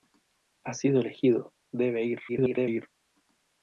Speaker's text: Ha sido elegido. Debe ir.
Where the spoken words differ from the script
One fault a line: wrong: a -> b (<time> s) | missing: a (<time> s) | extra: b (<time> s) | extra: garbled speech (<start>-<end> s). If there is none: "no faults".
extra: garbled speech (2.3-2.8 s)